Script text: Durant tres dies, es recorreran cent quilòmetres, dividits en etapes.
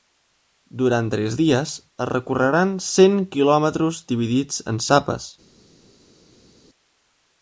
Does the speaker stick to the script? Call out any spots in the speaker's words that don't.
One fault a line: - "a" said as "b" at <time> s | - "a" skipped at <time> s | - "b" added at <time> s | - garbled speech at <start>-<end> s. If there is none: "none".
none